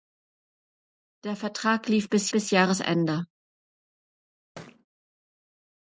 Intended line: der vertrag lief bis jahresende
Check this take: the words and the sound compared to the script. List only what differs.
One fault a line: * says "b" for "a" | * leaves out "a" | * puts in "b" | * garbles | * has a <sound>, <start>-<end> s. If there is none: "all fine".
* puts in "bis"
* has a thud, 4.6-4.9 s